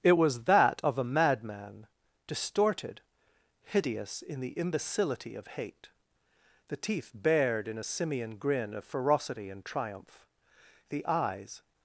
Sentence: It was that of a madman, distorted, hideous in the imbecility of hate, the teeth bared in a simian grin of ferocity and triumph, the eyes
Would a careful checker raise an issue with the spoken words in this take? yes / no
no